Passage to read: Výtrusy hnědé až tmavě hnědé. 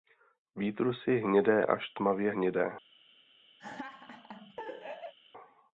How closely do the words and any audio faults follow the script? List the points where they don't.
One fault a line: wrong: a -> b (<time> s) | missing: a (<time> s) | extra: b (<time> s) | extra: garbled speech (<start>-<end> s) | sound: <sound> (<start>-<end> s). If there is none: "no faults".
sound: laugh (3.6-5.1 s)